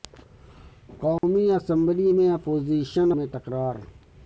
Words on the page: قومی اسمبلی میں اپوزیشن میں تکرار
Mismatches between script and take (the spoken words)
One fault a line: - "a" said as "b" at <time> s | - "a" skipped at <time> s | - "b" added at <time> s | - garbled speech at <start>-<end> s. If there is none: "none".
none